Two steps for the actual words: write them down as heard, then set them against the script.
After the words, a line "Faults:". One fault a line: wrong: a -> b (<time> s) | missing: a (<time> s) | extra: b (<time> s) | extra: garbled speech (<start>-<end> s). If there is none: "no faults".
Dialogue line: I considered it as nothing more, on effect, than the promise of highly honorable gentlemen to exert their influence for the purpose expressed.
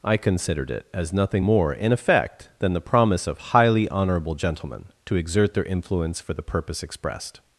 I considered it as nothing more, in effect, than the promise of highly honorable gentlemen to exert their influence for the purpose expressed.
Faults:
wrong: on -> in (1.7 s)